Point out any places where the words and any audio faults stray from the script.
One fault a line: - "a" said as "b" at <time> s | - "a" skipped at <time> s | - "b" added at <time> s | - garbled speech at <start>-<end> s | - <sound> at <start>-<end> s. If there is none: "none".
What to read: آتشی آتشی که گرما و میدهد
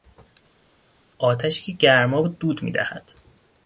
- "آتشی" skipped at 1.6 s
- "دود" added at 2.3 s